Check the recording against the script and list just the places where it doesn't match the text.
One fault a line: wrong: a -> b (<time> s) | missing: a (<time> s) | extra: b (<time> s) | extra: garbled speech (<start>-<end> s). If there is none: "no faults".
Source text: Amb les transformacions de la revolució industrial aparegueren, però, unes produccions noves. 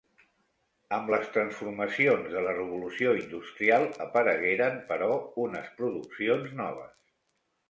no faults